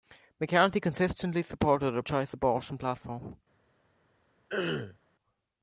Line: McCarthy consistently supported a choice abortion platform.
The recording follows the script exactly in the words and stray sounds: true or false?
false